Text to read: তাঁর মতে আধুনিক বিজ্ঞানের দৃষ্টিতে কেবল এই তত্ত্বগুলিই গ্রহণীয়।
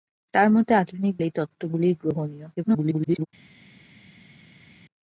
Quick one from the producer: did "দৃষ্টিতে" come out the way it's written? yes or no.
no